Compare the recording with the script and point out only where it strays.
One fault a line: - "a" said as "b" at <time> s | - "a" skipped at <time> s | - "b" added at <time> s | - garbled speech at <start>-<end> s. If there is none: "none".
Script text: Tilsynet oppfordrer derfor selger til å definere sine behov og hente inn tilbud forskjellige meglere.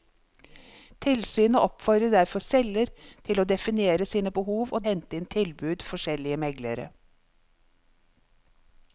none